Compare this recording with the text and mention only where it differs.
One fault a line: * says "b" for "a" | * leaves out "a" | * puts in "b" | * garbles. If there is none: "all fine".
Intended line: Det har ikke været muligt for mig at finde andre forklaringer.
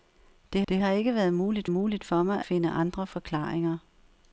* puts in "det"
* puts in "muligt"
* leaves out "at"